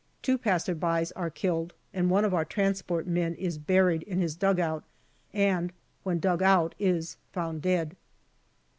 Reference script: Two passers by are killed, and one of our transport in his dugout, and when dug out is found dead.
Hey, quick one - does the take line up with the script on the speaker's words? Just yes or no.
no